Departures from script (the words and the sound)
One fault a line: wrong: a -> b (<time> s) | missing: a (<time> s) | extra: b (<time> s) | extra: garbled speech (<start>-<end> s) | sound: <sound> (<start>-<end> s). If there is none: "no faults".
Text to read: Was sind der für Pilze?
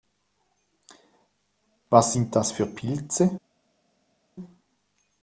wrong: der -> das (2.4 s)